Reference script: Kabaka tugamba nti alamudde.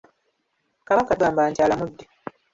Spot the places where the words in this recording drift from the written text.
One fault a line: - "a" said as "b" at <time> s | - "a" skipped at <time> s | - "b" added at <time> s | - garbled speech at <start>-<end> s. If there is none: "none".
none